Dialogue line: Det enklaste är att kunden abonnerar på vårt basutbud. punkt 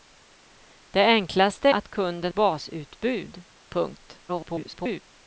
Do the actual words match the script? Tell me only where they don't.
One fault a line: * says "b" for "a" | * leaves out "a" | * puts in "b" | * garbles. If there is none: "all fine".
* leaves out "är"
* leaves out "abonnerar på vårt"
* garbles